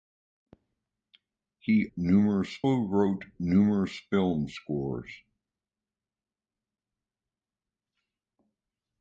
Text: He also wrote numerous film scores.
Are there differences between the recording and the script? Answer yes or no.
yes